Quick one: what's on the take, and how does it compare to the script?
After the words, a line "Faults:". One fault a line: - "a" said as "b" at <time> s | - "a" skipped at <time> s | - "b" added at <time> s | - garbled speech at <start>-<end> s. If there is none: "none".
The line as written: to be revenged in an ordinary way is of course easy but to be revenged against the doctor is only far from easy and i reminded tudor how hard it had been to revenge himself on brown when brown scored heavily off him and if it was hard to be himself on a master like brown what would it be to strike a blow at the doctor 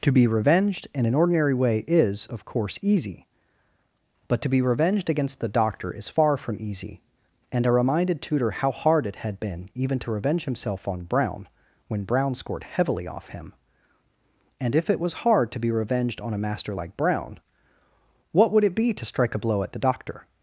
to be revenged in an ordinary way is of course easy but to be revenged against the doctor is far from easy and i reminded tudor how hard it had been even to revenge himself on brown when brown scored heavily off him and if it was hard to be revenged on a master like brown what would it be to strike a blow at the doctor
Faults:
- "only" skipped at 6.1 s
- "even" added at 9.7 s
- "himself" said as "revenged" at 15.7 s